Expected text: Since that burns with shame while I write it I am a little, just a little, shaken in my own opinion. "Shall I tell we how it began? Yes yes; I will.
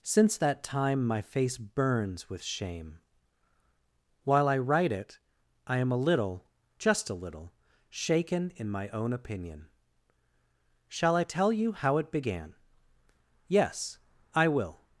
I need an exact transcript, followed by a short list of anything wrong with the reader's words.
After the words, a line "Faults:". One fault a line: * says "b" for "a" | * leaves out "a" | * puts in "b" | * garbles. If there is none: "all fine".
Since that time my face burns with shame while I write it I am a little, just a little, shaken in my own opinion. "Shall I tell you how it began? Yes; I will.
Faults:
* puts in "time my face"
* says "you" for "we"
* leaves out "yes"